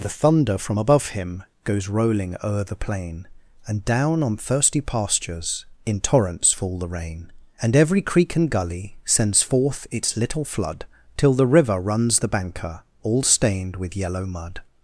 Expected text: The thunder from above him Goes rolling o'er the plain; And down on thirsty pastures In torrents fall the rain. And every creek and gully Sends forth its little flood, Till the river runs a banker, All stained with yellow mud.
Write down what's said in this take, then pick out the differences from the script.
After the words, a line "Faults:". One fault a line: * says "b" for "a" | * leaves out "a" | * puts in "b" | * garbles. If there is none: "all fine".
The thunder from above him Goes rolling o'er the plain; And down on thirsty pastures In torrents fall the rain. And every creek and gully Sends forth its little flood, Till the river runs the banker, All stained with yellow mud.
Faults:
* says "the" for "a"